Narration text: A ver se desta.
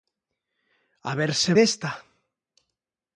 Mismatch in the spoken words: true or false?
false